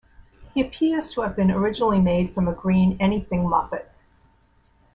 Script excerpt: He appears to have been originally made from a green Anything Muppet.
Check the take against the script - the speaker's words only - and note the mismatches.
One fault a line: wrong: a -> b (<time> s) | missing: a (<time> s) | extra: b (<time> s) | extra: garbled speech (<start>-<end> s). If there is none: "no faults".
no faults